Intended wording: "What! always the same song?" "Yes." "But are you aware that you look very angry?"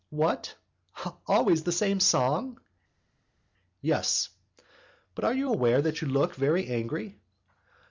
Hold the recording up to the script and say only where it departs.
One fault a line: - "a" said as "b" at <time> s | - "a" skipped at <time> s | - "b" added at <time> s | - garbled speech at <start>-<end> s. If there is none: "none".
none